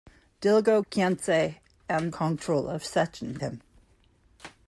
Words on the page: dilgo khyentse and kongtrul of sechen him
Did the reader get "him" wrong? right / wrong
right